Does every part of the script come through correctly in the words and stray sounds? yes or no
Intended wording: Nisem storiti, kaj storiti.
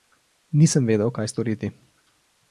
no